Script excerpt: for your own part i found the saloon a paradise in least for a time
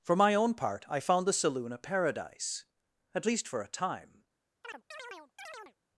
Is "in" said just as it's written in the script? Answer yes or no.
no